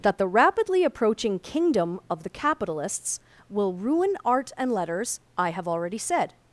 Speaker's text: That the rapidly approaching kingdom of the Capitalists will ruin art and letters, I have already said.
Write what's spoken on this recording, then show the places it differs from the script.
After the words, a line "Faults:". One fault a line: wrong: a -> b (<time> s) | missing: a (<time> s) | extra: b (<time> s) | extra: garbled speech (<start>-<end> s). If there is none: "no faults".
That the rapidly approaching kingdom of the Capitalists will ruin art and letters, I have already said.
Faults:
no faults